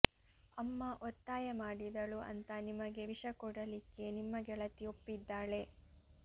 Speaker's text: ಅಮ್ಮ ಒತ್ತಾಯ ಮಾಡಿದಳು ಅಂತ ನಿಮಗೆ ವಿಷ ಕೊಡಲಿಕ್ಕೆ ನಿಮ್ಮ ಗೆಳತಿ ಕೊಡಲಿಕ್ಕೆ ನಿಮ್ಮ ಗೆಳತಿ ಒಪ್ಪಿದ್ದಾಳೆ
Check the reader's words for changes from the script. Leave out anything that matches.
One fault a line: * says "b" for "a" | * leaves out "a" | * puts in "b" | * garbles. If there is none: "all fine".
* leaves out "ಕೊಡಲಿಕ್ಕೆ ನಿಮ್ಮ ಗೆಳತಿ"